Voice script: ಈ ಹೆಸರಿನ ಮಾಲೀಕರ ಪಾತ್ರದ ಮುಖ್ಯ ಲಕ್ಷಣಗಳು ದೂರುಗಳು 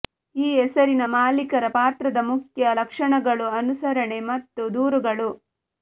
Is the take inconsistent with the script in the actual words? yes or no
yes